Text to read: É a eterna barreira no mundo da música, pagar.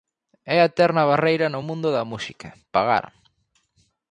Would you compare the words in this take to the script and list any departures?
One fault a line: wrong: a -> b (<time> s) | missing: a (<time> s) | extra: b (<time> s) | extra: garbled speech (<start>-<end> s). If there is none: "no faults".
no faults